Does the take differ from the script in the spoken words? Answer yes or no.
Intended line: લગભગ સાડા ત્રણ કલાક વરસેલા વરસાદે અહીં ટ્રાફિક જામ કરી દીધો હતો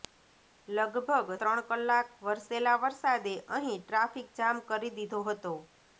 yes